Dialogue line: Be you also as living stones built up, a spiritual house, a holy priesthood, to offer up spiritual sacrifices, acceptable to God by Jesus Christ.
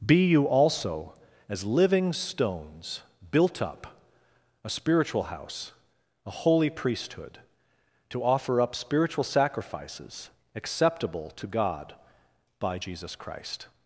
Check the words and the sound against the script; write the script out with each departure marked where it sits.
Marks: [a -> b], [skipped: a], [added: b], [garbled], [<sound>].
Be you also as living stones built up, a spiritual house, a holy priesthood, to offer up spiritual sacrifices, acceptable to God by Jesus Christ.